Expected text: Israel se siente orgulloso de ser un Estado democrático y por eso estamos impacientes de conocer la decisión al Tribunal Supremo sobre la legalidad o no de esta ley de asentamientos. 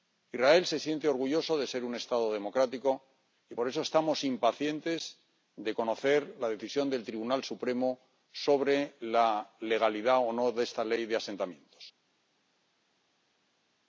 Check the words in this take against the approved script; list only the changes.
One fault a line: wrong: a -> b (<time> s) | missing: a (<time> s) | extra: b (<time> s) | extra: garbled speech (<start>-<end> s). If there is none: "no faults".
wrong: al -> del (6.9 s)